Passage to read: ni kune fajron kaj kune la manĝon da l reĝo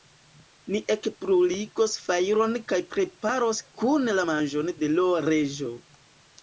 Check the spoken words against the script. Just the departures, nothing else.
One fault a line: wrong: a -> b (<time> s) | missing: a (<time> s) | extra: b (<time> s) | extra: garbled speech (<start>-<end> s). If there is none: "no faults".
wrong: kune -> ekbruligos (0.9 s)
extra: preparos (3.0 s)
wrong: da -> de (4.8 s)